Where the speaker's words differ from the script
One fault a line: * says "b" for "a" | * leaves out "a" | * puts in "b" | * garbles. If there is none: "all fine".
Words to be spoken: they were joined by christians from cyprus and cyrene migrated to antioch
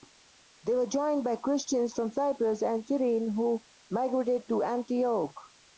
* puts in "who"